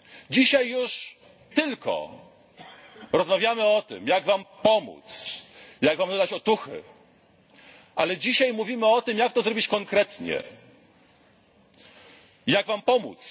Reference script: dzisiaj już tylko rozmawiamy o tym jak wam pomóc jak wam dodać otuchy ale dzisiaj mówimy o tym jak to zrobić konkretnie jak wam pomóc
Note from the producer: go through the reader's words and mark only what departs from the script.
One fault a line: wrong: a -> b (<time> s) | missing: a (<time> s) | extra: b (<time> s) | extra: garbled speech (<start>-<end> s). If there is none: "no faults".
no faults